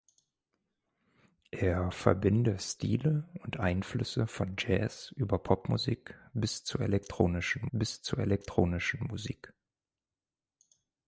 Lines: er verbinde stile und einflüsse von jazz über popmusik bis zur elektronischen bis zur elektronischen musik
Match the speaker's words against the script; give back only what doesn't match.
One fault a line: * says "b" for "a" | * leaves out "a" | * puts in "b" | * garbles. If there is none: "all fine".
all fine